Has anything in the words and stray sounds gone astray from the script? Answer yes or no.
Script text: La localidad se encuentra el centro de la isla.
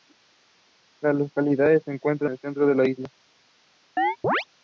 yes